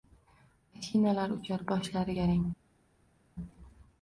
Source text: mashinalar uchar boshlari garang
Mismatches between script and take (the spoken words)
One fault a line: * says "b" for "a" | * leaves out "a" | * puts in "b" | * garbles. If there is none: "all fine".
all fine